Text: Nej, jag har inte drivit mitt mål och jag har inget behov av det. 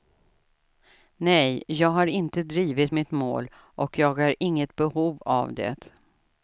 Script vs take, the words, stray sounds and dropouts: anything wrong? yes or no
no